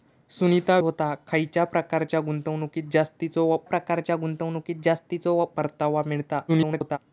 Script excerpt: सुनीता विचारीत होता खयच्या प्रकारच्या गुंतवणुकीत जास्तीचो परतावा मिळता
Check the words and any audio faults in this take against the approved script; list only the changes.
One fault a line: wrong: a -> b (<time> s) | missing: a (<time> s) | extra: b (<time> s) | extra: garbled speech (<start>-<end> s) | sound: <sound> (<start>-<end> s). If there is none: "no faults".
missing: विचारीत (0.8 s)
extra: प्रकारच्या गुंतवणुकीत जास्तीचो (3.6 s)
extra: garbled speech (6.5-7.0 s)